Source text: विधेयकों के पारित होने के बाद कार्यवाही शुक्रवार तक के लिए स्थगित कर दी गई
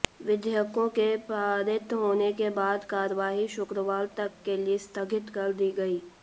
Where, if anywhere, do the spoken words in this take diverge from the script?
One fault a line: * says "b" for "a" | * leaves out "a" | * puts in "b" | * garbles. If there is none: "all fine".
all fine